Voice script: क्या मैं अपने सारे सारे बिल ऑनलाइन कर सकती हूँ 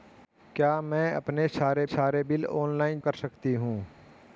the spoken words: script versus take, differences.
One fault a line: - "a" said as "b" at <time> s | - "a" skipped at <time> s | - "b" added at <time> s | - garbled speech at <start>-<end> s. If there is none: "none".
none